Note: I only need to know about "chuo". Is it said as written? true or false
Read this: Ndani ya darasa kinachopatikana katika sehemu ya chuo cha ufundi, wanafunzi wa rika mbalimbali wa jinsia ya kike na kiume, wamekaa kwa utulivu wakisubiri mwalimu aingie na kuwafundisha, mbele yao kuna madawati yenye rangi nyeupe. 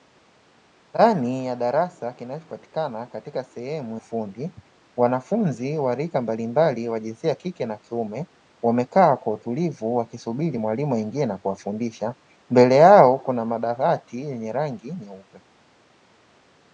false